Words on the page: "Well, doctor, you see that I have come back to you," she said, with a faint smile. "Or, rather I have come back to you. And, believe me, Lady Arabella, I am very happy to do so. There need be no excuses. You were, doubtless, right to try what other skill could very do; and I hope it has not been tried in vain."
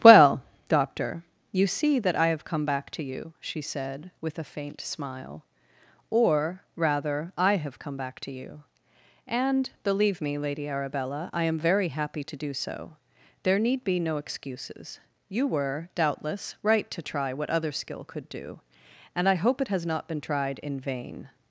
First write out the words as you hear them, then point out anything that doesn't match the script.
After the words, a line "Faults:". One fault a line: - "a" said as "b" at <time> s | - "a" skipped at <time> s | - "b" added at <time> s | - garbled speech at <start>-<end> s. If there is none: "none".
"Well, doctor, you see that I have come back to you," she said, with a faint smile. "Or, rather I have come back to you. And, believe me, Lady Arabella, I am very happy to do so. There need be no excuses. You were, doubtless, right to try what other skill could do; and I hope it has not been tried in vain."
Faults:
- "very" skipped at 18.3 s